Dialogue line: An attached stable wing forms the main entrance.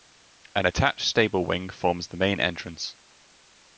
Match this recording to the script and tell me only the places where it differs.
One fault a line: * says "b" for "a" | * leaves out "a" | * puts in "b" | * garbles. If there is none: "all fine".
all fine